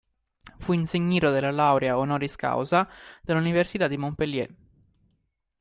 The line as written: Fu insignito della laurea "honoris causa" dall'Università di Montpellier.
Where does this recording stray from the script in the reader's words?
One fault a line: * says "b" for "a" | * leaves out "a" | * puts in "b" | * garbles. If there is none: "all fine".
all fine